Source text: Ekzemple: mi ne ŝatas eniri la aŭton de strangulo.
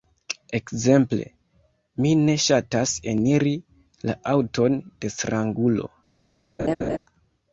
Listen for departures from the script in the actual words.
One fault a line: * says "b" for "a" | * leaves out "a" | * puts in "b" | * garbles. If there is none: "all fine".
all fine